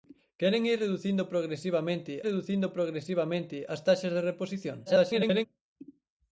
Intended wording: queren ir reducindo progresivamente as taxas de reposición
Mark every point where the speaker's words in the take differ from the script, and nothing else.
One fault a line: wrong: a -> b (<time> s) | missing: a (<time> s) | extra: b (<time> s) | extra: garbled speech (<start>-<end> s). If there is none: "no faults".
extra: reducindo progresivamente (2.3 s)
extra: garbled speech (4.9-5.5 s)